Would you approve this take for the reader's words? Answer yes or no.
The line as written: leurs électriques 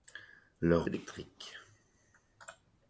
yes